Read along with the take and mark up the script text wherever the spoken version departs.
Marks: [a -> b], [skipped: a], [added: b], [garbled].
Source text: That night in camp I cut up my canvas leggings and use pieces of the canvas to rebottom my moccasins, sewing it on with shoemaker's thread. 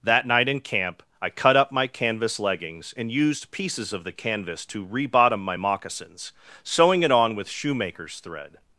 That night in camp I cut up my canvas leggings and [use -> used] pieces of the canvas to rebottom my moccasins, sewing it on with shoemaker's thread.